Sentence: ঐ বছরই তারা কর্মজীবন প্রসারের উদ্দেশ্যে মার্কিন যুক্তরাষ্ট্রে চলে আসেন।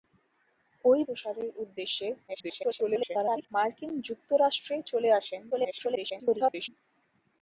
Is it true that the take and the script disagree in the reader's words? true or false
true